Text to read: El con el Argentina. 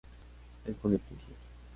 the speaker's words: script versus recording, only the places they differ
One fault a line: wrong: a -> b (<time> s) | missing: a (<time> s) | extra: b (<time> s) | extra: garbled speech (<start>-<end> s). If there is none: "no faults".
no faults